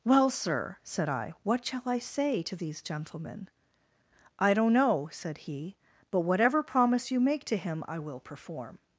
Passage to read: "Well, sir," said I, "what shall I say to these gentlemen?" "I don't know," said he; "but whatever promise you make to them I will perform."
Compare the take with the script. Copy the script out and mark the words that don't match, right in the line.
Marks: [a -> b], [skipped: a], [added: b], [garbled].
"Well, sir," said I, "what shall I say to these gentlemen?" "I don't know," said he; "but whatever promise you make to [them -> him] I will perform."